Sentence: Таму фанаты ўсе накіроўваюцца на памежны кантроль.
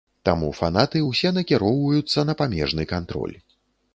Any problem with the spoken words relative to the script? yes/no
no